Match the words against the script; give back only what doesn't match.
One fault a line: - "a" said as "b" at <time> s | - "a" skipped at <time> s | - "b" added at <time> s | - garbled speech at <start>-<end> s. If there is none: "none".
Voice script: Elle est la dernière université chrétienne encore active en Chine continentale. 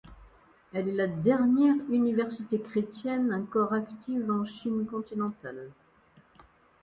none